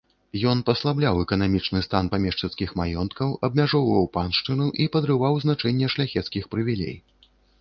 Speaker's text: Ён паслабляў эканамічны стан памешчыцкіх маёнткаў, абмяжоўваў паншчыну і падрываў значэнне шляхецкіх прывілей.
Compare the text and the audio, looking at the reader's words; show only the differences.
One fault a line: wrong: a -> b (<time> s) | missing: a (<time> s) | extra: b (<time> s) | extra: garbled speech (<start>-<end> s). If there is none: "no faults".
no faults